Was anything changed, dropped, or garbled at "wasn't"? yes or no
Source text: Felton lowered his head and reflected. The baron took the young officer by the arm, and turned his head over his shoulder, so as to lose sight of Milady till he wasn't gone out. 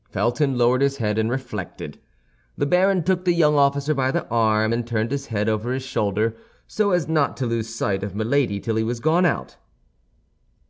yes